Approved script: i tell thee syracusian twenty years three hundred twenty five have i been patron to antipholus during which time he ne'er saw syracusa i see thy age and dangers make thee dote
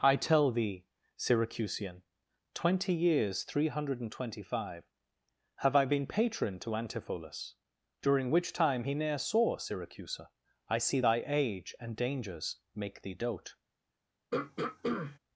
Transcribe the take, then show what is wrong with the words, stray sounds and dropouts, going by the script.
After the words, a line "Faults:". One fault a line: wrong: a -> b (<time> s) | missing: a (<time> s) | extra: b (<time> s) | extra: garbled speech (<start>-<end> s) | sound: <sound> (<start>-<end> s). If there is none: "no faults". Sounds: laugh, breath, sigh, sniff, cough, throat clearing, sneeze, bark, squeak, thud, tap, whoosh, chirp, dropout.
i tell thee syracusian twenty years three hundred and twenty five have i been patron to antipholus during which time he ne'er saw syracusa i see thy age and dangers make thee dote
Faults:
extra: and (4.0 s)
sound: throat clearing (14.3-15.2 s)